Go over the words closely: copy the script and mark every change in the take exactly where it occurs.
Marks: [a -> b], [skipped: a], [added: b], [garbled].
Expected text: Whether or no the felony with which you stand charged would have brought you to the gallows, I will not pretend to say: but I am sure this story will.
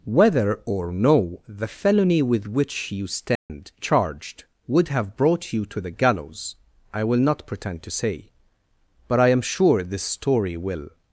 Whether or no the felony with which you stand charged would have brought you to the gallows, I will not pretend to say: but I am sure this story will.